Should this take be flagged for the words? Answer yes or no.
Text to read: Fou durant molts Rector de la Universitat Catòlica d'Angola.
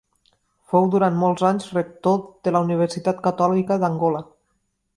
yes